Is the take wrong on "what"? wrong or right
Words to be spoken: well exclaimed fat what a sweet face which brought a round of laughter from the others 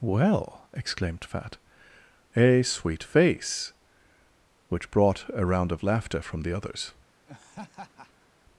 wrong